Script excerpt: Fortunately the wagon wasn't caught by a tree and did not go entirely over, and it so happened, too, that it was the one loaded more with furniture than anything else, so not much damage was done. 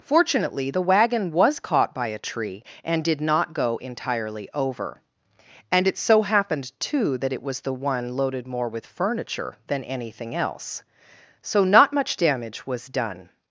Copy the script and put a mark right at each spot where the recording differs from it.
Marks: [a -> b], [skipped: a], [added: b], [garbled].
Fortunately the wagon [wasn't -> was] caught by a tree and did not go entirely over, and it so happened, too, that it was the one loaded more with furniture than anything else, so not much damage was done.